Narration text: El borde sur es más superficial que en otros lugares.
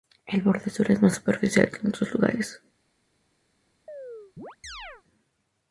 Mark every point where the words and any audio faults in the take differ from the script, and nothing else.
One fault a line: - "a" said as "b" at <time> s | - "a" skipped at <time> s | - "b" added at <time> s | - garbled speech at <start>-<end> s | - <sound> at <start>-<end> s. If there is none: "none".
- chirp at 3.9-5.0 s